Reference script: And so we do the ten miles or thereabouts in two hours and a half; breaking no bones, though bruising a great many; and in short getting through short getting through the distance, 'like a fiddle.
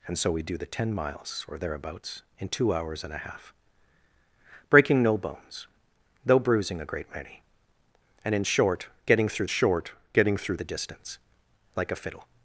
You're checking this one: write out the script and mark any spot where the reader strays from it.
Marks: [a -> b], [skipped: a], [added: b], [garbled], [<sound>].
And so we do the ten miles or thereabouts in two hours and a half; breaking no bones, though bruising a great many; and in short getting through short getting through the distance, 'like a fiddle.